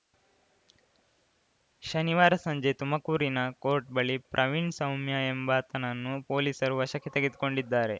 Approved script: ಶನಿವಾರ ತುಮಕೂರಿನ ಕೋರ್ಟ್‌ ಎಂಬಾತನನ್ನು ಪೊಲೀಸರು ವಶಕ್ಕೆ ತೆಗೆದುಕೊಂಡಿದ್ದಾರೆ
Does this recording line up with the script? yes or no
no